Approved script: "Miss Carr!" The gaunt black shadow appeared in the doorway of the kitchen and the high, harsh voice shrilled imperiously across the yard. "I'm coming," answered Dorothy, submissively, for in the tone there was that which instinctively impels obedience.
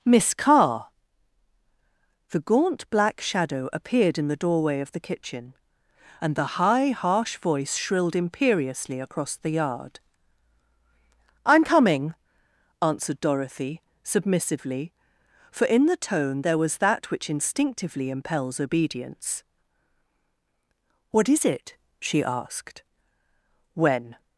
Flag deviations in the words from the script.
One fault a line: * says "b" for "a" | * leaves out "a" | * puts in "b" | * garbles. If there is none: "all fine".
* puts in "What is it she asked when"